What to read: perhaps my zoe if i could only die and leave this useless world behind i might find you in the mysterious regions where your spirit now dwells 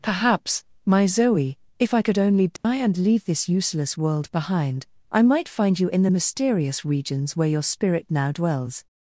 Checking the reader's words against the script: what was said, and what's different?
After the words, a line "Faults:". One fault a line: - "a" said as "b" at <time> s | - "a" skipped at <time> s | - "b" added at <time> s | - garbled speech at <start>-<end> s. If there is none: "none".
perhaps my zoe if i could only die and leave this useless world behind i might find you in the mysterious regions where your spirit now dwells
Faults:
none